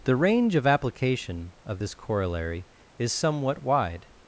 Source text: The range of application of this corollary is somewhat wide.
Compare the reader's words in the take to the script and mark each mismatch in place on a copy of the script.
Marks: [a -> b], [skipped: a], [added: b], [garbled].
The range of application of this corollary is somewhat wide.